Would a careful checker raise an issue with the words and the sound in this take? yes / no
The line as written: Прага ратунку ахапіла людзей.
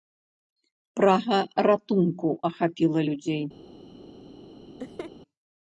yes